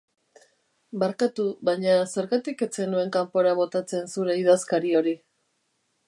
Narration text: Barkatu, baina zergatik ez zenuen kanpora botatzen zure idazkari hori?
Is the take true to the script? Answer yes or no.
yes